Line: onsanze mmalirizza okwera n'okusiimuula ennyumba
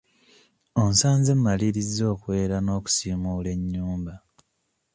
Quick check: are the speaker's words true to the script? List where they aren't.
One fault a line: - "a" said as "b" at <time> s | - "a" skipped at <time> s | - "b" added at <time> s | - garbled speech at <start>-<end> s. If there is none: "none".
none